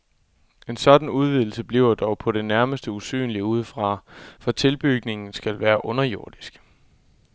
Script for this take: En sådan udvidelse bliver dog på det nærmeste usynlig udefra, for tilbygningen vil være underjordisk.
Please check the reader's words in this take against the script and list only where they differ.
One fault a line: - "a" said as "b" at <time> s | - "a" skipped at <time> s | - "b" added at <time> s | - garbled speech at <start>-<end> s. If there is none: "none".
- "vil" said as "skal" at 5.3 s